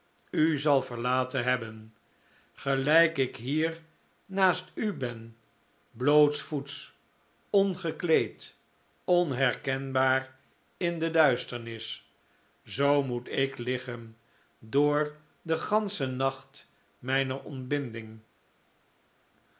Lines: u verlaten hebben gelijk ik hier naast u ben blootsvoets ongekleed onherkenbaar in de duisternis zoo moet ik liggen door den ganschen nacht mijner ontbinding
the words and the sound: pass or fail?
fail